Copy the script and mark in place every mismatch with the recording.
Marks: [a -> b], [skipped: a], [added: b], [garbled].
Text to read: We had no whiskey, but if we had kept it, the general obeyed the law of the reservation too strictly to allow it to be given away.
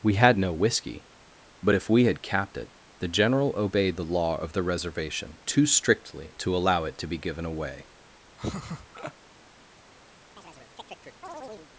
We had no whiskey, but if we had [kept -> capped] it, the general obeyed the law of the reservation too strictly to allow it to be given away.